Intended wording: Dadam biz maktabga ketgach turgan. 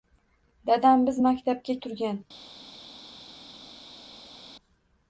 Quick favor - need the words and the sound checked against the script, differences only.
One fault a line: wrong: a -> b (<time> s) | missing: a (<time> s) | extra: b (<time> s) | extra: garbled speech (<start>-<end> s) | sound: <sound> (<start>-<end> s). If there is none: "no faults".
missing: ketgach (1.8 s)